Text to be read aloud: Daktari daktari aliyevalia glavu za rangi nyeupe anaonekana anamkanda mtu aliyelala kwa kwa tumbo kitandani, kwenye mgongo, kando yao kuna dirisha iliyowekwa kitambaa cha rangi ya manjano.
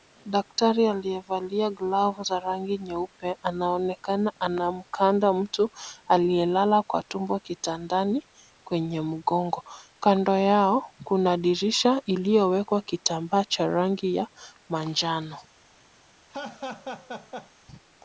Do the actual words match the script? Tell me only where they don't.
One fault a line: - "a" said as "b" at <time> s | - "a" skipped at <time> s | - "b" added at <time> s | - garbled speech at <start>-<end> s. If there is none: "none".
- "daktari" skipped at 0.9 s
- "kwa" skipped at 7.0 s